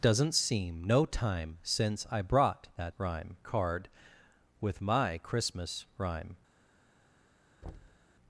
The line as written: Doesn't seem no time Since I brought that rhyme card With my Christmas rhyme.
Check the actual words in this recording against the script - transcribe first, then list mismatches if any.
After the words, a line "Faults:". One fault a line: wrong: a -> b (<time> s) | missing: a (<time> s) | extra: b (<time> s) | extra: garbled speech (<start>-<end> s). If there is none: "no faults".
Doesn't seem no time Since I brought that rhyme card With my Christmas rhyme.
Faults:
no faults